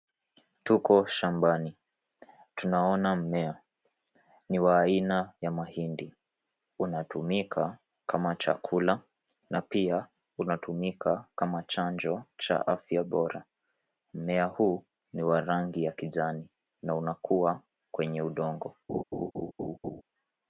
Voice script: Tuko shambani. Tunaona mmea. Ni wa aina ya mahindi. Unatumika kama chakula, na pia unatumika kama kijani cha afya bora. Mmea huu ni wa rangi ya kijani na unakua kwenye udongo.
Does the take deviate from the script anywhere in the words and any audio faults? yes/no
yes